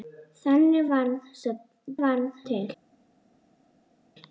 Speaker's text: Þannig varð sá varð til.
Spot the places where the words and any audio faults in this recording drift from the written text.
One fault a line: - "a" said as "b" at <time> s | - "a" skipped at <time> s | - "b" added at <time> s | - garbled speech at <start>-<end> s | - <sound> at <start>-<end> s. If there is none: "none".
none